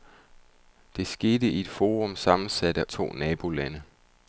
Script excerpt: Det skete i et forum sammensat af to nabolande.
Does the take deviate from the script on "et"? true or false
false